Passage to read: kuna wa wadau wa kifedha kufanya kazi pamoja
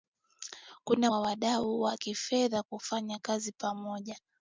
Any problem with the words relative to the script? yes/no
no